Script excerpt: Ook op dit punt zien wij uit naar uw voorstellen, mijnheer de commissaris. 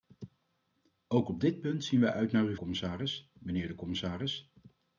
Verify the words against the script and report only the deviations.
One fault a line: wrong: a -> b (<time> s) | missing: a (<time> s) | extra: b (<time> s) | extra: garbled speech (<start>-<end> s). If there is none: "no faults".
wrong: voorstellen -> commissaris (2.5 s)